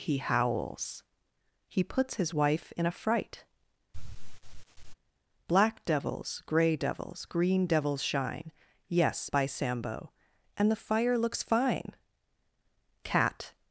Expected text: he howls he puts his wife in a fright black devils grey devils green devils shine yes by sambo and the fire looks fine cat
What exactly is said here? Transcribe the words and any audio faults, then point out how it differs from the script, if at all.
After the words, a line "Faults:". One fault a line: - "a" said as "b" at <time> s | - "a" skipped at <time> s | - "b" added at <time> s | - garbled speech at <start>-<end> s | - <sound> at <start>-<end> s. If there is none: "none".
he howls he puts his wife in a fright black devils grey devils green devils shine yes by sambo and the fire looks fine cat
Faults:
- sigh at 3.9-4.9 s